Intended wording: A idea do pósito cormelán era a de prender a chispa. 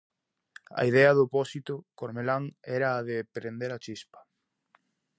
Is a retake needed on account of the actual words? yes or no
no